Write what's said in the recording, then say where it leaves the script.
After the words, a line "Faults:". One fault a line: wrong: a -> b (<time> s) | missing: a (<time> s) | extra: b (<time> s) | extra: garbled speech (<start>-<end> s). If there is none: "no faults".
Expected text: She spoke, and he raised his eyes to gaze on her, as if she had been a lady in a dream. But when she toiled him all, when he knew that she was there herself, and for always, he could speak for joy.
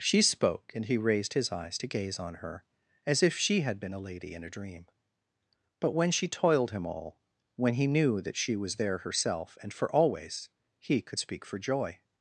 She spoke, and he raised his eyes to gaze on her, as if she had been a lady in a dream. But when she toiled him all, when he knew that she was there herself, and for always, he could speak for joy.
Faults:
no faults